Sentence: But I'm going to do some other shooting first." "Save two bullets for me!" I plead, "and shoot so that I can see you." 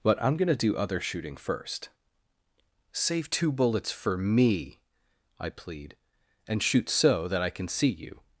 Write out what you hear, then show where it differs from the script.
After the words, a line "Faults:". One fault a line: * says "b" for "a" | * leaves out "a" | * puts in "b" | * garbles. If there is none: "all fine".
But I'm going to do other shooting first." "Save two bullets for me!" I plead, "and shoot so that I can see you."
Faults:
* leaves out "some"